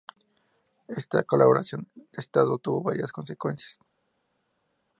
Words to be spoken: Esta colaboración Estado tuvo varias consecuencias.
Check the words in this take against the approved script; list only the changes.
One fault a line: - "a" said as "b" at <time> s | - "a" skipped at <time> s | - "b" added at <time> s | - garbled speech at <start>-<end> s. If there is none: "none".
- "de" added at 1.9 s